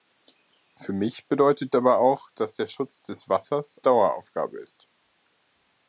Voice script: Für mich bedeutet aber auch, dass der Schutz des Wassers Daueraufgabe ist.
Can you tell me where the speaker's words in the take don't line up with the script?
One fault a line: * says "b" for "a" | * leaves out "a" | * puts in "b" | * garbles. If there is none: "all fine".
all fine